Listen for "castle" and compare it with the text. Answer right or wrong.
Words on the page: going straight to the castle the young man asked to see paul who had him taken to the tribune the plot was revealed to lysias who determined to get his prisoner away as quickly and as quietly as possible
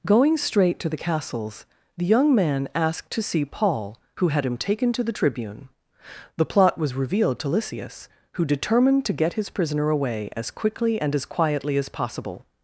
wrong